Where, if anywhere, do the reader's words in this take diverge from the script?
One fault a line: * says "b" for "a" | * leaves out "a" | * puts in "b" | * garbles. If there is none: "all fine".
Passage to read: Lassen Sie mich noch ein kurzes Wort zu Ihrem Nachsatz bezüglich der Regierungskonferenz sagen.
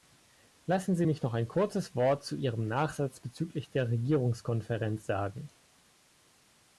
all fine